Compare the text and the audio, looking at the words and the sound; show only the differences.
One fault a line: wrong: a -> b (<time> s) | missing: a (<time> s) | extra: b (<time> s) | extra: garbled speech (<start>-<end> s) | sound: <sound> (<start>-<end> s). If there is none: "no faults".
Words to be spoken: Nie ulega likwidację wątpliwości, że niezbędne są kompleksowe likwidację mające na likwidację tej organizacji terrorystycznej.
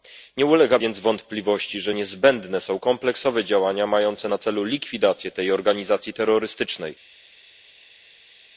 wrong: likwidację -> więc (0.8 s)
wrong: likwidację -> działania (3.4 s)
extra: celu (4.4 s)